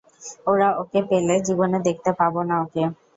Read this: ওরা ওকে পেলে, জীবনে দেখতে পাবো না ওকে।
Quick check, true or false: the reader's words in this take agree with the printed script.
true